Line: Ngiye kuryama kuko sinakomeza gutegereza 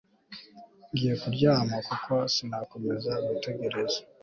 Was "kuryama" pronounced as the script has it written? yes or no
yes